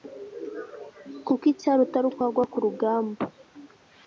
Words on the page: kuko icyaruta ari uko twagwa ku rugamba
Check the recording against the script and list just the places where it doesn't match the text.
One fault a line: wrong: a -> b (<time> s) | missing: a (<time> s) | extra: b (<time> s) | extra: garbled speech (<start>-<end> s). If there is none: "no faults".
missing: uko (2.1 s)